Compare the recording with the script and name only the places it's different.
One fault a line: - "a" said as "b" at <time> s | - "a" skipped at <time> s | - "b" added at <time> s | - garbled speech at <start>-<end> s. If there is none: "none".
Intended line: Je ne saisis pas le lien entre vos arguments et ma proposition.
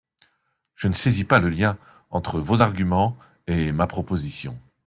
none